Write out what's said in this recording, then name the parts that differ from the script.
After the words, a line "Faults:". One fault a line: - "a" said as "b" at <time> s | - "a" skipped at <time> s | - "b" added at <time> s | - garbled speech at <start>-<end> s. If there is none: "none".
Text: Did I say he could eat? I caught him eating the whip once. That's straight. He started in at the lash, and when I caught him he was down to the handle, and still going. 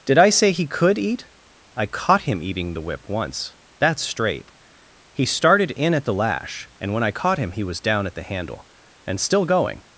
Did I say he could eat? I caught him eating the whip once. That's straight. He started in at the lash, and when I caught him he was down at the handle, and still going.
Faults:
- "to" said as "at" at 8.1 s